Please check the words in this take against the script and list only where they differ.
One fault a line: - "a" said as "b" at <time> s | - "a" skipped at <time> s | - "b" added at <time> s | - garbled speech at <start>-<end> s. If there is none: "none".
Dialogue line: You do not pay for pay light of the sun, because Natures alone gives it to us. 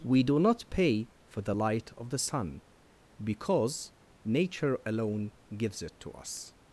- "You" said as "We" at 0.0 s
- "pay" said as "the" at 1.4 s
- "Natures" said as "Nature" at 4.2 s